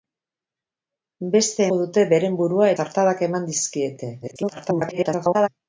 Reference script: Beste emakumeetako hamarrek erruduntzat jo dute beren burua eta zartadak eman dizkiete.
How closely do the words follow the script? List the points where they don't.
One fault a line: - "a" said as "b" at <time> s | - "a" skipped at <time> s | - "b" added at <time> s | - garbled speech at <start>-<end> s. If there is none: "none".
- "emakumeetako hamarrek erruduntzat" skipped at 1.7 s
- "eta" skipped at 2.7 s
- garbled speech at 4.2-5.5 s